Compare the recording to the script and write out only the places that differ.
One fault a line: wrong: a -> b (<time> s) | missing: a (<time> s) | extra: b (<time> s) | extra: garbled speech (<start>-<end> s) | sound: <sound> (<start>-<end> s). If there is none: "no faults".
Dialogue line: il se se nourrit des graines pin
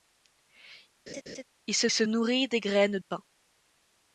sound: laugh (1.1-1.4 s)